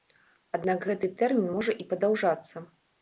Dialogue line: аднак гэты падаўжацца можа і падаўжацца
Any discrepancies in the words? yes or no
yes